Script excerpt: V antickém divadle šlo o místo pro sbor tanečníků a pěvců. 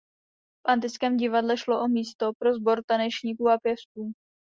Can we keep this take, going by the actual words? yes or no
yes